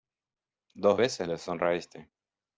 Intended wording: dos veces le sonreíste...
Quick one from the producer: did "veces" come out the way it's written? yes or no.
yes